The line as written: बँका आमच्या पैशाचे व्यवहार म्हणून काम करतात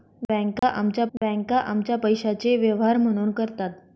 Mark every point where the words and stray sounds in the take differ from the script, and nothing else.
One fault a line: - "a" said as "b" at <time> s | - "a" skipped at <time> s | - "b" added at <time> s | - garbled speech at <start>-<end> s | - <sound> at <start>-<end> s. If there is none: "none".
- dropout at 0.6-0.6 s
- "बँका आमच्या" added at 1.2 s
- "काम" skipped at 3.3 s